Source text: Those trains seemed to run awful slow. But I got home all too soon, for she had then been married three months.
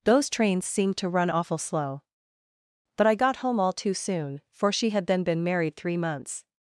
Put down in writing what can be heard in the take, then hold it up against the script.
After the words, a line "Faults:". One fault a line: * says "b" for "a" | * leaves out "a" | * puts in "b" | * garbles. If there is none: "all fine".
Those trains seemed to run awful slow. But I got home all too soon, for she had then been married three months.
Faults:
all fine